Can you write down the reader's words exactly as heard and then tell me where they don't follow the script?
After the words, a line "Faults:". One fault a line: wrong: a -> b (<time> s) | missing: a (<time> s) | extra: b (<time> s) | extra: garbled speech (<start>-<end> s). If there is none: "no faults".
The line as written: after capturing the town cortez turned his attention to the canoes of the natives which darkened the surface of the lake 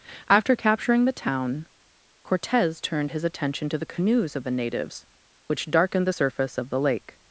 after capturing the town cortez turned his attention to the canoes of the natives which darkened the surface of the lake
Faults:
no faults